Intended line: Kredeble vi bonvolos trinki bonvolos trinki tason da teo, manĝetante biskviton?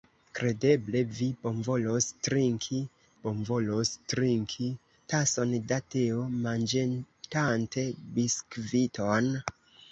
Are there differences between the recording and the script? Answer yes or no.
no